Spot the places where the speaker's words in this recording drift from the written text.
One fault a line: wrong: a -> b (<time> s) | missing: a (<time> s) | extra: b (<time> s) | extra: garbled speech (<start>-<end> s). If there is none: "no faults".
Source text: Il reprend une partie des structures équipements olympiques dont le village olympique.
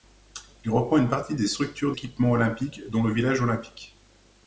no faults